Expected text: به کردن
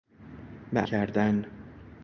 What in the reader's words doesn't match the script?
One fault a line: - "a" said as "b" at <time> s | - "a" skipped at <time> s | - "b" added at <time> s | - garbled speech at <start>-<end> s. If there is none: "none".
none